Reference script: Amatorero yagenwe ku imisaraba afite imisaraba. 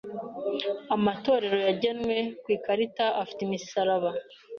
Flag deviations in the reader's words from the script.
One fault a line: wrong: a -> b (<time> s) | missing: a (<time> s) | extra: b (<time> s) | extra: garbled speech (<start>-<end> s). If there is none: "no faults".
wrong: imisaraba -> ikarita (2.5 s)